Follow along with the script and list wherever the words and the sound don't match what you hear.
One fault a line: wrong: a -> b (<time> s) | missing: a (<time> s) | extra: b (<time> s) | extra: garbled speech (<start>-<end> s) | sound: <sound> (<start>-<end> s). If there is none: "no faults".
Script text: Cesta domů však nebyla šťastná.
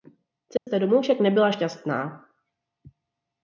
sound: dropout (0.6-0.7 s)